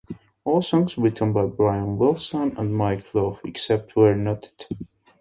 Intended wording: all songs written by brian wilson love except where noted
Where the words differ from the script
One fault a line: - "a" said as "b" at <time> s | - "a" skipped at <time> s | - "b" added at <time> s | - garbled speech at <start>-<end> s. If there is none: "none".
- "and mike" added at 2.6 s